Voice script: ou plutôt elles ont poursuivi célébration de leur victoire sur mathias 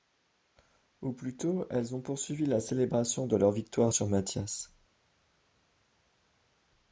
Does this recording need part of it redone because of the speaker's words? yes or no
yes